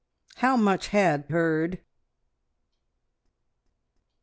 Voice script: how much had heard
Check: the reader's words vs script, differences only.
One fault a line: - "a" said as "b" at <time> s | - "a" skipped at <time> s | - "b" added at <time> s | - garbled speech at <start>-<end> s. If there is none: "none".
none